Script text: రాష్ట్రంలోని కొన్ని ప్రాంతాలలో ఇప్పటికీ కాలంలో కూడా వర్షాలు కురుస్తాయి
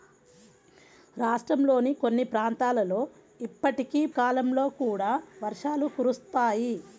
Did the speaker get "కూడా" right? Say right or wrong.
right